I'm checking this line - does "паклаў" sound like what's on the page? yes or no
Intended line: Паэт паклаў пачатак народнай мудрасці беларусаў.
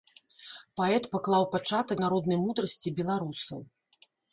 yes